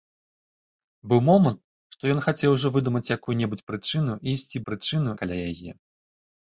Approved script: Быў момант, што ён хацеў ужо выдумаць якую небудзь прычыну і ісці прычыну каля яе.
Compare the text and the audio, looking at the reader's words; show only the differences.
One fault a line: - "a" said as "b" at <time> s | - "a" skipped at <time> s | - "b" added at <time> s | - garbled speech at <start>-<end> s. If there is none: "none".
none